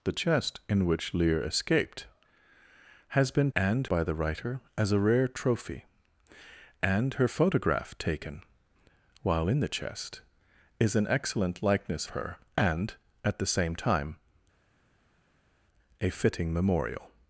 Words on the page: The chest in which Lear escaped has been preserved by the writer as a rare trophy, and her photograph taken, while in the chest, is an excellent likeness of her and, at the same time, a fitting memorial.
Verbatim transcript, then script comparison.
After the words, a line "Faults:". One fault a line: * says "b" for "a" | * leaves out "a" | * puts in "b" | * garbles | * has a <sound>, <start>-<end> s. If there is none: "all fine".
The chest in which Lear escaped has been and by the writer as a rare trophy, and her photograph taken, while in the chest, is an excellent likeness her and, at the same time, a fitting memorial.
Faults:
* says "and" for "preserved"
* leaves out "of"